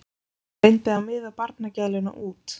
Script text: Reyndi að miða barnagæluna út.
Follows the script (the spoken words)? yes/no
yes